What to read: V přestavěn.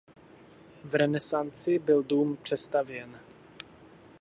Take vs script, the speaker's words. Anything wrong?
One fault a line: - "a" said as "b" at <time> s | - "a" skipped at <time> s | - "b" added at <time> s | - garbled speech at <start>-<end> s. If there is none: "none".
- "renesanci byl dům" added at 0.9 s